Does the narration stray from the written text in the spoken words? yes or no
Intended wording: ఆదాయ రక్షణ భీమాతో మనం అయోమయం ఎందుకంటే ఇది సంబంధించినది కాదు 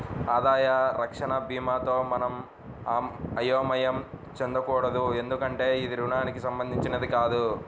yes